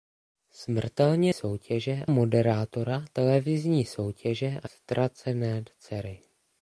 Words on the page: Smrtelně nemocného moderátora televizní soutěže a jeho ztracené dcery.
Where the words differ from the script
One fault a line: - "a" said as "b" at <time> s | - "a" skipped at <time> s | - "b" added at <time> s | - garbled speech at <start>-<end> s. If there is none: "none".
- "nemocného" said as "soutěže" at 1.3 s
- "jeho" skipped at 4.7 s